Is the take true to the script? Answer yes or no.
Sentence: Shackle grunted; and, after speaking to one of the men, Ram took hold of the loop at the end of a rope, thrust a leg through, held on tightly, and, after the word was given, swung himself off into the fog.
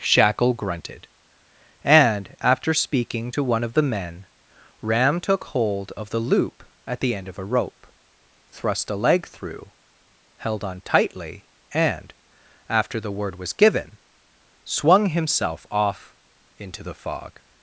yes